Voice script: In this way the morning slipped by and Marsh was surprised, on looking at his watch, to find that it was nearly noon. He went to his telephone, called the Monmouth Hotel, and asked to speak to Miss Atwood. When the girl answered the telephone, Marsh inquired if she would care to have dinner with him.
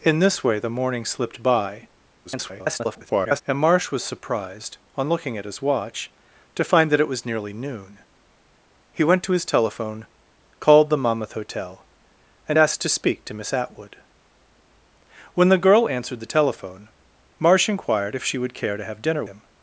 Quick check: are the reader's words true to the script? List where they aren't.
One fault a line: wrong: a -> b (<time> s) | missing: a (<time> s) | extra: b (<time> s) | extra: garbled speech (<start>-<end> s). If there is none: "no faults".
extra: garbled speech (2.2-3.4 s)
missing: with (19.2 s)